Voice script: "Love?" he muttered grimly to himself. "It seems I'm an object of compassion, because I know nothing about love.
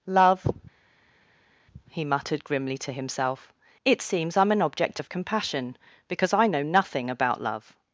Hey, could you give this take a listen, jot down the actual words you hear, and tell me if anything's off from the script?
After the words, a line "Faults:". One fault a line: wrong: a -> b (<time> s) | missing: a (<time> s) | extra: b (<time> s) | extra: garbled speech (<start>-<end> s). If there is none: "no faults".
"Love?" he muttered grimly to himself. "It seems I'm an object of compassion, because I know nothing about love.
Faults:
no faults